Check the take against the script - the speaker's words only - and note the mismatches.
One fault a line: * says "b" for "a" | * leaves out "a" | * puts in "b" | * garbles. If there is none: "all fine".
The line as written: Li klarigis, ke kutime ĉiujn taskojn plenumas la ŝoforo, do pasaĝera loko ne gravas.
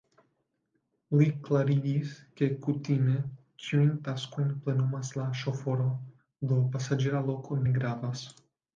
all fine